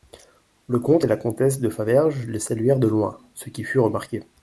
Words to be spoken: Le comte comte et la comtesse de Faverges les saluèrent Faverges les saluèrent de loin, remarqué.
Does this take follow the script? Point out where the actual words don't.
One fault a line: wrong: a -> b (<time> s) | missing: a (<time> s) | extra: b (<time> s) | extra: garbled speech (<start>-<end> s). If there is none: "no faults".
missing: comte (1.1 s)
wrong: Faverges les saluèrent de loin -> de loin ce qui fut (2.8 s)